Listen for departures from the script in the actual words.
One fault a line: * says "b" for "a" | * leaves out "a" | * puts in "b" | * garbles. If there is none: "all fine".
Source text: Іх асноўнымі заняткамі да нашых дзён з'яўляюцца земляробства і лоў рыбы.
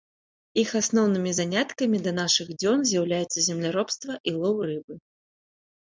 all fine